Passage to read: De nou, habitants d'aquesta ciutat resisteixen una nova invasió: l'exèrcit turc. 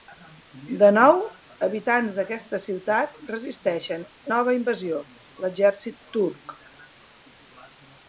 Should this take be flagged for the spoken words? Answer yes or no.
yes